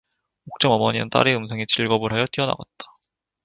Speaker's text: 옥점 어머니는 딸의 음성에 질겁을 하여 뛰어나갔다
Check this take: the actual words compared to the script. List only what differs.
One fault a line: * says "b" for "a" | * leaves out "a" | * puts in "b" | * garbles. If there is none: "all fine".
all fine